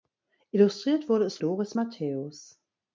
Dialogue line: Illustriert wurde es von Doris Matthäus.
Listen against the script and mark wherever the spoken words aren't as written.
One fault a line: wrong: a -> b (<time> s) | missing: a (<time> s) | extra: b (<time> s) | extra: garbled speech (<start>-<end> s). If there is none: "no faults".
missing: von (1.4 s)